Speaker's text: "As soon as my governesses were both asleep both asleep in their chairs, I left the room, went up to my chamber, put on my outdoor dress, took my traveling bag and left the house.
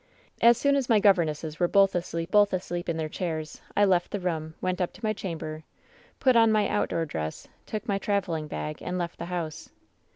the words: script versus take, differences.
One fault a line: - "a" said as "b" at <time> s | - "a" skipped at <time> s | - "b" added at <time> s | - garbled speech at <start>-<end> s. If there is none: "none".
none